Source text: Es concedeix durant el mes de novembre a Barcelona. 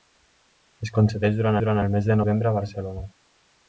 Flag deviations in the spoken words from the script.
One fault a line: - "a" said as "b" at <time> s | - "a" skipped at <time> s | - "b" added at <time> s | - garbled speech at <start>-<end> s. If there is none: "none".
- "durant" added at 1.6 s